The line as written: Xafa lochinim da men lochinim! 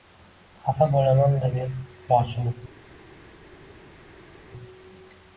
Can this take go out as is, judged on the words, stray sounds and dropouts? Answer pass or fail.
fail